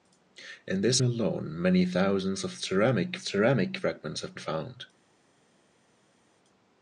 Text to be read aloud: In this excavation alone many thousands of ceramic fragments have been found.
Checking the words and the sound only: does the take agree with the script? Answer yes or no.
no